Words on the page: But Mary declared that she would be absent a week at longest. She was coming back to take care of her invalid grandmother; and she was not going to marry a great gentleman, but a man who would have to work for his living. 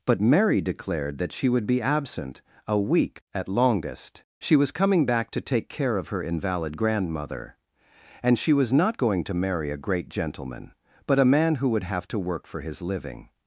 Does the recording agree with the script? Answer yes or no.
yes